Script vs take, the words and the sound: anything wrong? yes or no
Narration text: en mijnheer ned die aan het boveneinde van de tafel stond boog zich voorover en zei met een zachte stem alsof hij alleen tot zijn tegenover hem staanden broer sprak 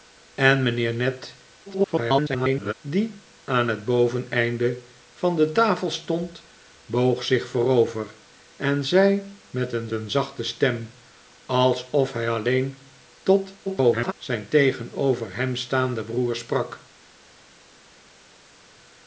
yes